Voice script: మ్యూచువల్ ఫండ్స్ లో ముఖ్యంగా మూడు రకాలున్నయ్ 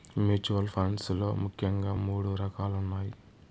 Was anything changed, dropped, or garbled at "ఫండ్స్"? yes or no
no